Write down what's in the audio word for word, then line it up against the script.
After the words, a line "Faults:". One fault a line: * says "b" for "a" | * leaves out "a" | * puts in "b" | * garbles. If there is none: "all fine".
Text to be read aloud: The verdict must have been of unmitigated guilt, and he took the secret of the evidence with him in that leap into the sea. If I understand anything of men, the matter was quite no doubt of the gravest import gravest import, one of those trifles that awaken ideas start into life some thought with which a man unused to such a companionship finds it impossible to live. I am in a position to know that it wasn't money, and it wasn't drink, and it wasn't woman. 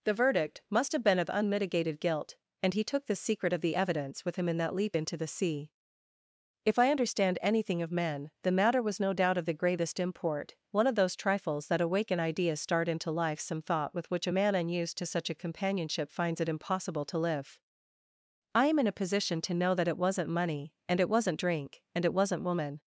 The verdict must have been of unmitigated guilt, and he took the secret of the evidence with him in that leap into the sea. If I understand anything of men, the matter was no doubt of the gravest import, one of those trifles that awaken ideas start into life some thought with which a man unused to such a companionship finds it impossible to live. I am in a position to know that it wasn't money, and it wasn't drink, and it wasn't woman.
Faults:
* leaves out "quite"
* leaves out "gravest import"